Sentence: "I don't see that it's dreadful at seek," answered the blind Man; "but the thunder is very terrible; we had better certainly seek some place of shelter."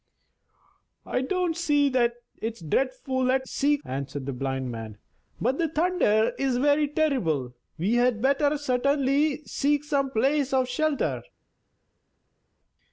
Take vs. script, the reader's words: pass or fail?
pass